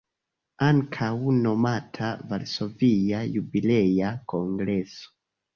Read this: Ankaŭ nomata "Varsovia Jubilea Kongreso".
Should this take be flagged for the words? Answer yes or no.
no